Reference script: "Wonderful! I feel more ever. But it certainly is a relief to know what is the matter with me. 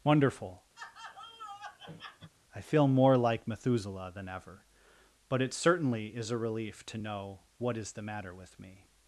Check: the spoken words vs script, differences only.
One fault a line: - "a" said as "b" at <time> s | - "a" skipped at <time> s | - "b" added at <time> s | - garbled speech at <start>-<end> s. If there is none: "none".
- "like Methuselah than" added at 3.2 s